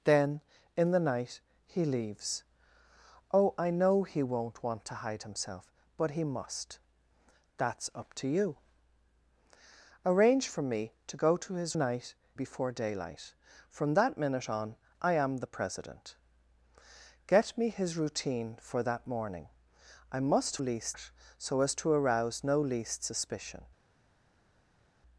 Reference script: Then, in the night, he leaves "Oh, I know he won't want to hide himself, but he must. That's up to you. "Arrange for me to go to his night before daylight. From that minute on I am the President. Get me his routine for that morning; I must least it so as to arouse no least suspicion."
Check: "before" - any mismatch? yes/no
no